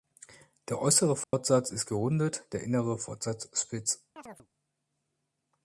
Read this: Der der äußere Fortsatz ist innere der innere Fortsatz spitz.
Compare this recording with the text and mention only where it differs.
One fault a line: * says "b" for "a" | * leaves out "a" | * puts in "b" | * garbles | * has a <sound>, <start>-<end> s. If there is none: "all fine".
* leaves out "der"
* has a dropout, 1.2-1.3 s
* says "gerundet" for "innere"
* has a chirp, 4.2-4.5 s